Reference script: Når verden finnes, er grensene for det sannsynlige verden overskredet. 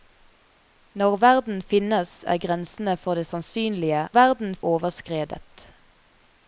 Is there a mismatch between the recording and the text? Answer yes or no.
no